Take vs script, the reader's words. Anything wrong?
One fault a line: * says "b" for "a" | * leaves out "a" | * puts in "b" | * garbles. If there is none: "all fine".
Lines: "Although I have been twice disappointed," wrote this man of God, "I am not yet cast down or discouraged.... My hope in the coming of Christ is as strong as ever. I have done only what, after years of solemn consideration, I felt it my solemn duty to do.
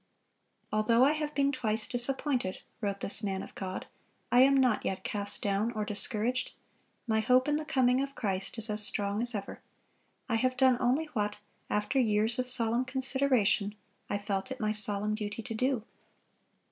all fine